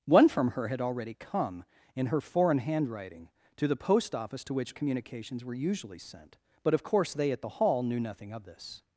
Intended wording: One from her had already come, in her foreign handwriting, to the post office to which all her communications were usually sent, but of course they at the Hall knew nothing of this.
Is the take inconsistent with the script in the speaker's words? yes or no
yes